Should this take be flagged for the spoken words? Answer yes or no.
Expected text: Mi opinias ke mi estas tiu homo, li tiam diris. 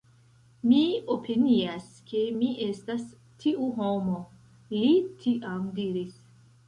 no